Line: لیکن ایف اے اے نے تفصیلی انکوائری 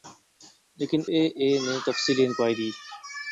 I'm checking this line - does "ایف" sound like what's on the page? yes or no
no